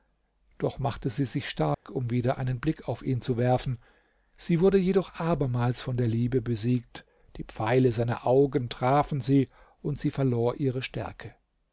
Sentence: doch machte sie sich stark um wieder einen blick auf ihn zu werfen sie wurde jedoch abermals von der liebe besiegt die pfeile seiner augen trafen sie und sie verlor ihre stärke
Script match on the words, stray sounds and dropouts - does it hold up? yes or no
no